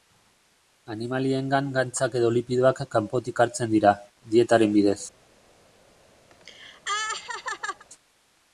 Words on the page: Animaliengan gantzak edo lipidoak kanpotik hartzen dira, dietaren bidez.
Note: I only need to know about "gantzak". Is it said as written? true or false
true